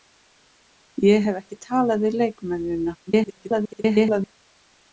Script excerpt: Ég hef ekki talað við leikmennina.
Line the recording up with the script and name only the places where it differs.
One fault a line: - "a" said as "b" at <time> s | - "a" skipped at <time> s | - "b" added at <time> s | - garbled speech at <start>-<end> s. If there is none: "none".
- garbled speech at 3.1-4.3 s